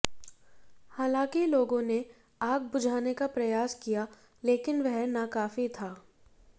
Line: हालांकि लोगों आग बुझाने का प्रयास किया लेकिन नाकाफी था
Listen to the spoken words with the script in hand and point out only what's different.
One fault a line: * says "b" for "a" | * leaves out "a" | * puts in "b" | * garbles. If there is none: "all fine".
* puts in "ने"
* puts in "वह"